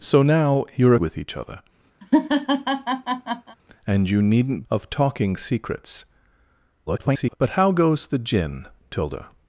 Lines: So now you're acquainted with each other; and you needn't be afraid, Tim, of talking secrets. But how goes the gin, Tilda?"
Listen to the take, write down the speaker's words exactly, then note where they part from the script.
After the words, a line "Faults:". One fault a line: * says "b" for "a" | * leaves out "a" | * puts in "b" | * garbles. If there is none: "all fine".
So now you're with each other; and you needn't of talking secrets. [garbled] But how goes the gin, Tilda?"
Faults:
* leaves out "acquainted"
* leaves out "be afraid Tim"
* garbles